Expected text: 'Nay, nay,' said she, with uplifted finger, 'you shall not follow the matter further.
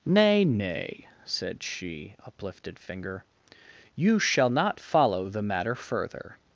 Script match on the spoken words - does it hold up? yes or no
no